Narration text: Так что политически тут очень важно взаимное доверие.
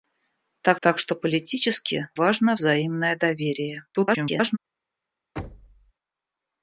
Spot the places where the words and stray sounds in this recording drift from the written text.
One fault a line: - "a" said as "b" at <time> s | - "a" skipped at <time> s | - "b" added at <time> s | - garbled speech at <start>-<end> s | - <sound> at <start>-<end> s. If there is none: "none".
- "так" added at 0.8 s
- "тут очень" skipped at 2.1 s
- garbled speech at 3.9-4.6 s
- thud at 5.4-5.9 s